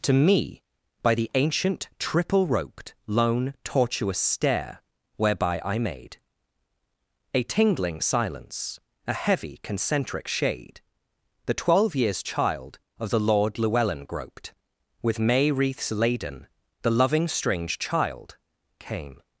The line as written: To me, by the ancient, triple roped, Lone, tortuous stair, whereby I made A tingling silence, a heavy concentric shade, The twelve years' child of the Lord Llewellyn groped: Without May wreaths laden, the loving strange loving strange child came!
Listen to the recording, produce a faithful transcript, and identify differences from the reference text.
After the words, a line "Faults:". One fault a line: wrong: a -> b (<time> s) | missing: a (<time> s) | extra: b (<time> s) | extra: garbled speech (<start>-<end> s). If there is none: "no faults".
To me, by the ancient, triple roped, Lone, tortuous stair, whereby I made A tingling silence, a heavy concentric shade, The twelve years' child of the Lord Llewellyn groped: With May wreaths laden, the loving strange child came!
Faults:
wrong: Without -> With (15.0 s)
missing: loving strange (17.8 s)